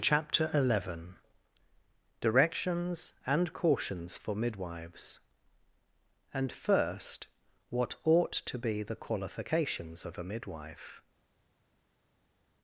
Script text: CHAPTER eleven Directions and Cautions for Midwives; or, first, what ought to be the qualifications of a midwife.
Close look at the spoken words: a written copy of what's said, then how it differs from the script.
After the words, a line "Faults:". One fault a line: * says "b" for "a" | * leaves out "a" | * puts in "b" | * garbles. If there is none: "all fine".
CHAPTER eleven Directions and Cautions for Midwives; and, first, what ought to be the qualifications of a midwife.
Faults:
* says "and" for "or"